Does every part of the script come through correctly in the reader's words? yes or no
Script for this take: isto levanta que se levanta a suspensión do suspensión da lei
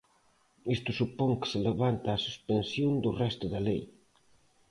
no